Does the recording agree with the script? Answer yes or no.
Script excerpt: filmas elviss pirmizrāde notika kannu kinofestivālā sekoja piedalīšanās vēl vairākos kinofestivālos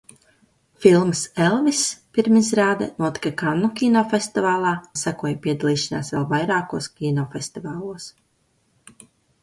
yes